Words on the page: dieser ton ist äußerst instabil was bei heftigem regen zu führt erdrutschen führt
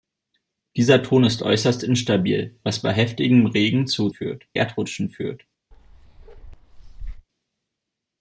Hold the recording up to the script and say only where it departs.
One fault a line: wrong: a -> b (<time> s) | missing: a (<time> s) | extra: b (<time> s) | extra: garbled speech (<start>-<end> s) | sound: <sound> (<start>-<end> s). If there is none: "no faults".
sound: bark (5.7-7.3 s)